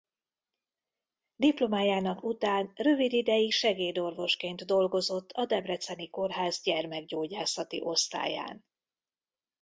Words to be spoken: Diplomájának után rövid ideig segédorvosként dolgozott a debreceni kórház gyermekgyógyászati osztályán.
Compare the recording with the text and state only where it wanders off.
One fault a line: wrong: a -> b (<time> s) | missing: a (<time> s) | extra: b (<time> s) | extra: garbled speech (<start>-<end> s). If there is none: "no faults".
no faults